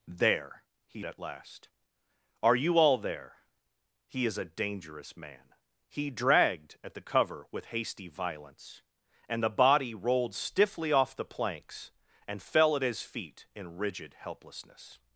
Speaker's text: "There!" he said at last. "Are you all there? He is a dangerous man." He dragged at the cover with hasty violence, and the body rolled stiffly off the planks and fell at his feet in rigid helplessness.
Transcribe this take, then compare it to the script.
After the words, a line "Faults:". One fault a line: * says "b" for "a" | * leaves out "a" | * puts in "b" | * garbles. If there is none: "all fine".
"There!" he at last. "Are you all there? He is a dangerous man." He dragged at the cover with hasty violence, and the body rolled stiffly off the planks and fell at his feet in rigid helplessness.
Faults:
* leaves out "said"